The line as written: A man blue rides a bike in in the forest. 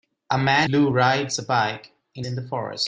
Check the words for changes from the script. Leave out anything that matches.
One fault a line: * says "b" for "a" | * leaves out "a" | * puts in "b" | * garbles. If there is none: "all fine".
all fine